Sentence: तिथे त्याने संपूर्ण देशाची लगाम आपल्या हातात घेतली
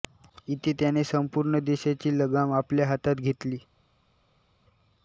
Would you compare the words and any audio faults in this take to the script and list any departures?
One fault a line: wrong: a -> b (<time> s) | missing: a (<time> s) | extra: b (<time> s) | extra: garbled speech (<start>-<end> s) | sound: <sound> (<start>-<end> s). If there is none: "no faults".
wrong: तिथे -> इथे (0.5 s)